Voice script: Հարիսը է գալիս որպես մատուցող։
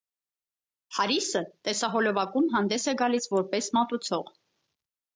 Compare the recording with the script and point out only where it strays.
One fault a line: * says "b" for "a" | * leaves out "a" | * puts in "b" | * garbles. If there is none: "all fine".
* puts in "տեսահոլովակում հանդես"